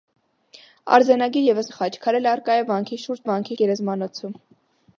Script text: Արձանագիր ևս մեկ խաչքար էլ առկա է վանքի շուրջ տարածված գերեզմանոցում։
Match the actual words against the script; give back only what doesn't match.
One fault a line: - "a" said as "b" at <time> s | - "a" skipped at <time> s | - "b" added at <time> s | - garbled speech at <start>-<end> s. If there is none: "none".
- "մեկ" skipped at 1.7 s
- "տարածված" said as "վանքի" at 3.3 s